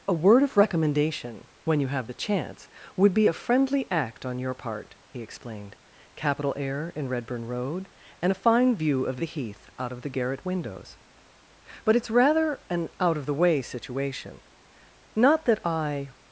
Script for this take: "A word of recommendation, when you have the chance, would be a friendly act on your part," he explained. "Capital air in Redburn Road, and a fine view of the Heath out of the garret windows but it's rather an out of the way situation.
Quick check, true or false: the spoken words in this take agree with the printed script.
false